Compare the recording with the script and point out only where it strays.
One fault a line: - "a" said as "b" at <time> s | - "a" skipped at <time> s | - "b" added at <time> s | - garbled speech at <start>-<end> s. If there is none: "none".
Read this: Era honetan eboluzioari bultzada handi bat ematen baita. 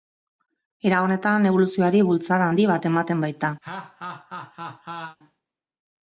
none